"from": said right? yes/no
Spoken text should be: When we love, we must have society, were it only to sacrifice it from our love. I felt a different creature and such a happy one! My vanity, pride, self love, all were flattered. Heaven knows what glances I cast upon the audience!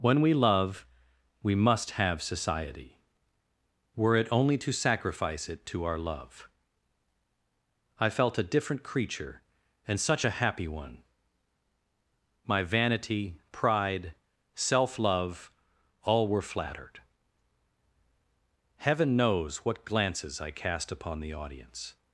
no